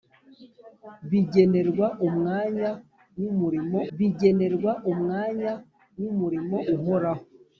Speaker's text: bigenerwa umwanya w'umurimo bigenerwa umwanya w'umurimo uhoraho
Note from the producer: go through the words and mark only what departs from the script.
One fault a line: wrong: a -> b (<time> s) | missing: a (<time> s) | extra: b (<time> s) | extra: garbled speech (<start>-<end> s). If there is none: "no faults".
no faults